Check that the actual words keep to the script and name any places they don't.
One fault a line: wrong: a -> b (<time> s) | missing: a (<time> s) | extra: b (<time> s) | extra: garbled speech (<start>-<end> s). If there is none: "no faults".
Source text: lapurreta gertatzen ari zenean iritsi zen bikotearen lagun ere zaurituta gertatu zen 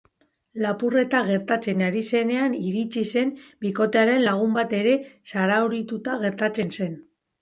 extra: bat (4.6 s)